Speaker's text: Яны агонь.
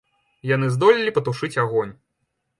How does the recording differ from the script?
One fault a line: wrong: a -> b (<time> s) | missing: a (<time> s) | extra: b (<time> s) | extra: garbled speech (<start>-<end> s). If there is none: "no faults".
extra: здолелі патушыць (0.8 s)